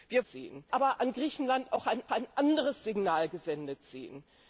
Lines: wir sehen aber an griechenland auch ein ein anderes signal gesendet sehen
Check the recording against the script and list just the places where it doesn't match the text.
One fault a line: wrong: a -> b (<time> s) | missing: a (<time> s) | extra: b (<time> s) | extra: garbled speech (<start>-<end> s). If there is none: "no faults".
no faults